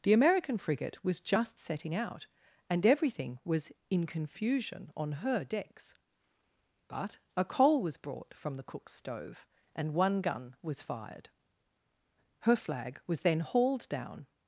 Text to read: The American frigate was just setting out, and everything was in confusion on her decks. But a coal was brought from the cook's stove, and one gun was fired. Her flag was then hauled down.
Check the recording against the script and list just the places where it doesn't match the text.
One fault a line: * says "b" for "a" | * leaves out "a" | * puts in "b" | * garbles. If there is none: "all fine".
all fine